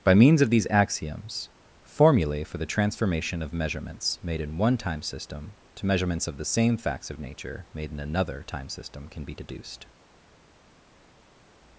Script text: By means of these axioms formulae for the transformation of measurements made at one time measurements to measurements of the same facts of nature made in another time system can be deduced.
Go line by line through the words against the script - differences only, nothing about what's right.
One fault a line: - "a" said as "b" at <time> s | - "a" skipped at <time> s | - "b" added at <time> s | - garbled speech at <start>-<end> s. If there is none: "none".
- "at" said as "in" at 4.4 s
- "measurements" said as "system" at 5.0 s